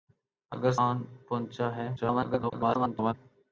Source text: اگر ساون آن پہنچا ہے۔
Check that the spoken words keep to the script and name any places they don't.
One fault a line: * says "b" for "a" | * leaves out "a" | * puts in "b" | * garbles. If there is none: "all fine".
* leaves out "ساون"
* garbles